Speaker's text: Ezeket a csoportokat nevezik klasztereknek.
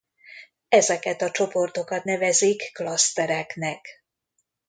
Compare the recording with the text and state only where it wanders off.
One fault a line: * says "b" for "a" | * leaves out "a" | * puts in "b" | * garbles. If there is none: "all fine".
all fine